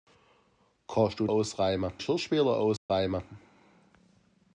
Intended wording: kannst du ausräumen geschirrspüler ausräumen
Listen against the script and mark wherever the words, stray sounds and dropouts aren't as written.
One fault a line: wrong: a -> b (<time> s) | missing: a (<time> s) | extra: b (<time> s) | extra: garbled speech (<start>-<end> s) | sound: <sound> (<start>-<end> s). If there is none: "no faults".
sound: dropout (2.8-2.9 s)